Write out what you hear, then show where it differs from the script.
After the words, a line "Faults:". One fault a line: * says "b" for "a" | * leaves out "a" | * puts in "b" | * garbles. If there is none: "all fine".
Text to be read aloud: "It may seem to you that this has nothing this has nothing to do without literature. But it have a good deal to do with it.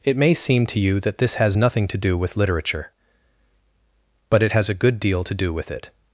"It may seem to you that this has nothing to do with literature. But it has a good deal to do with it.
Faults:
* leaves out "this has nothing"
* says "with" for "without"
* says "has" for "have"